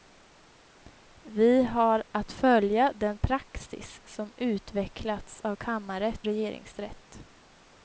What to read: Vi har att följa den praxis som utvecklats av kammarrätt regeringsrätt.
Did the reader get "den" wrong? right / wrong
right